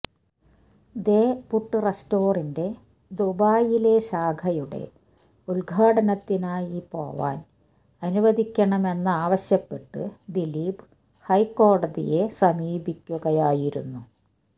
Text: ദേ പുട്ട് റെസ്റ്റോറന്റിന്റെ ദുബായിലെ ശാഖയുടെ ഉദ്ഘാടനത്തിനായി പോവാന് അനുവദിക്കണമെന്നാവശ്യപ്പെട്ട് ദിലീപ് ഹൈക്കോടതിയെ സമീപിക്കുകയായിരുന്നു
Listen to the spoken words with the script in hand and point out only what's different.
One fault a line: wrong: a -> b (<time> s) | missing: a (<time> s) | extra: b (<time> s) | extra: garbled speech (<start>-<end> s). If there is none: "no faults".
no faults